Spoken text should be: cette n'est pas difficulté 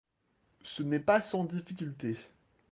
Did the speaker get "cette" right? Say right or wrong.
wrong